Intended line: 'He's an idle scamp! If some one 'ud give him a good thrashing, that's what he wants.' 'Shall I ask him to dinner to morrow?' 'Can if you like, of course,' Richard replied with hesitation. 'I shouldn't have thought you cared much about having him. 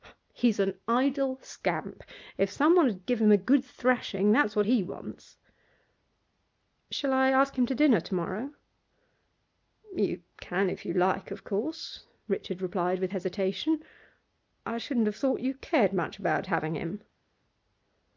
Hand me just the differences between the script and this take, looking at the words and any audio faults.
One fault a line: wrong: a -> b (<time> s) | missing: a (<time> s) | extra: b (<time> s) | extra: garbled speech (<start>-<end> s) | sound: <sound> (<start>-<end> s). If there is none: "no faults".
extra: You (9.9 s)